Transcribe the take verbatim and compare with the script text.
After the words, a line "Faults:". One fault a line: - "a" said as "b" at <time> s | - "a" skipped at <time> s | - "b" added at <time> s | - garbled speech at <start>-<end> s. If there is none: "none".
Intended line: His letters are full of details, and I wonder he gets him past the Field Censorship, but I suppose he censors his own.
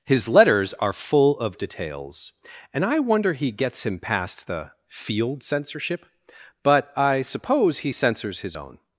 His letters are full of details, and I wonder he gets him past the Field Censorship, but I suppose he censors his own.
Faults:
none